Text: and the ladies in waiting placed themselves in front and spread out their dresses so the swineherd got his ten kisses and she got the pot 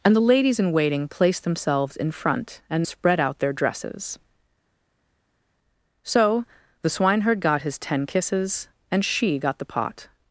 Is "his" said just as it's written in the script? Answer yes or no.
yes